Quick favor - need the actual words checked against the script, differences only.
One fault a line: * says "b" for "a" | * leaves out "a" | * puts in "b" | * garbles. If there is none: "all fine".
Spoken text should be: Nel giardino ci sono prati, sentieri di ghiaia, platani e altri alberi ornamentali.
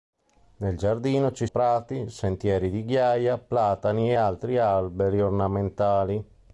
* leaves out "sono"